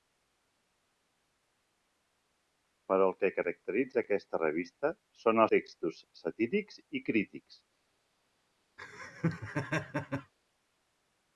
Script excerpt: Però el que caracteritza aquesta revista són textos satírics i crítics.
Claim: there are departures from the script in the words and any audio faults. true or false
true